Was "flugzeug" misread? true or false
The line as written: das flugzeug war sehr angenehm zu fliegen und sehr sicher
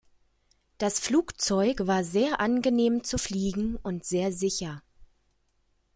false